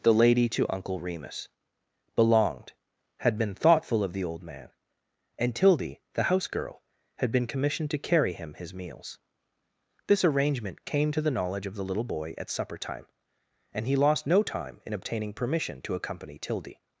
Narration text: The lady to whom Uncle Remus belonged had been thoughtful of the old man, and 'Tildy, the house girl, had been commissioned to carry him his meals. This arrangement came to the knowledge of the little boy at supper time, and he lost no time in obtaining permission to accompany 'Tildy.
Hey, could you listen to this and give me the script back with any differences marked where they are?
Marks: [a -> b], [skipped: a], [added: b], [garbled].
The lady to [skipped: whom] Uncle Remus belonged had been thoughtful of the old man, and 'Tildy, the house girl, had been commissioned to carry him his meals. This arrangement came to the knowledge of the little boy at supper time, and he lost no time in obtaining permission to accompany 'Tildy.